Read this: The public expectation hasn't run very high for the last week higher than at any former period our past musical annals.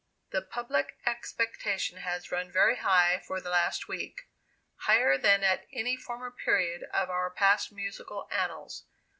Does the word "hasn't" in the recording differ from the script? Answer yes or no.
yes